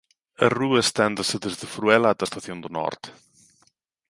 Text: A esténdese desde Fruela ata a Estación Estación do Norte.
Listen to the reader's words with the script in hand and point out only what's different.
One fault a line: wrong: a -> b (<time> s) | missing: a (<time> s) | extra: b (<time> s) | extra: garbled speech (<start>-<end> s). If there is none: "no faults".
extra: rúa (0.6 s)
missing: Estación (2.6 s)